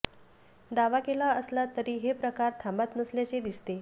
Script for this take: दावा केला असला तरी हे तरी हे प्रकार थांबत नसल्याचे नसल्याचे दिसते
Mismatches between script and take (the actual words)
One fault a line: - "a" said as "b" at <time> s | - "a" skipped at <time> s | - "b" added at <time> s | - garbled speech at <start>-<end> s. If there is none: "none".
- "तरी हे" skipped at 2.1 s
- "नसल्याचे" skipped at 3.4 s